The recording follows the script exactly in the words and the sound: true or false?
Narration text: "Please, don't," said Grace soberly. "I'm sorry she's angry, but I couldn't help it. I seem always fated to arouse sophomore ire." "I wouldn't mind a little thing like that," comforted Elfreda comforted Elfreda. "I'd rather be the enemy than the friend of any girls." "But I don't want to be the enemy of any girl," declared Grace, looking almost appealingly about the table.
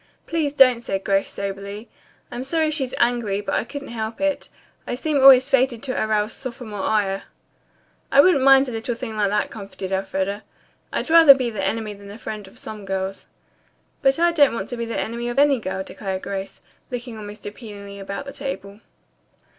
false